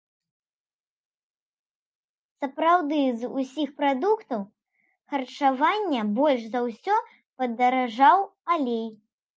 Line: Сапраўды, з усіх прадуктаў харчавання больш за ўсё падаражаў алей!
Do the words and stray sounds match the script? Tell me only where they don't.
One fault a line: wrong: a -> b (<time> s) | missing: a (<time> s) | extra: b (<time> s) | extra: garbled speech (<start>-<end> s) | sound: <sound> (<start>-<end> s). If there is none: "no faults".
no faults